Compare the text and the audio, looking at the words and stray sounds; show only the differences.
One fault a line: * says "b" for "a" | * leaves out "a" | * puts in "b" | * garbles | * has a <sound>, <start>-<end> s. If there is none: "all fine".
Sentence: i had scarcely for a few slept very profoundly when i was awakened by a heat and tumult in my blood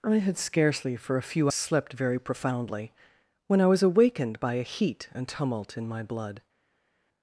all fine